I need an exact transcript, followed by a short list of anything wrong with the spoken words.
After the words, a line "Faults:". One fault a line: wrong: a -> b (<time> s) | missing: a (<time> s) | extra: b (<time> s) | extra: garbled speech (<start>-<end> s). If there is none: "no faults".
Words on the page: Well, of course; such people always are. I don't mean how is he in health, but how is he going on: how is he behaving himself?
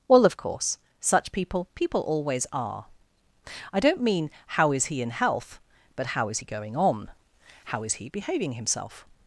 Well, of course; such people people always are. I don't mean how is he in health, but how is he going on: how is he behaving himself?
Faults:
extra: people (1.8 s)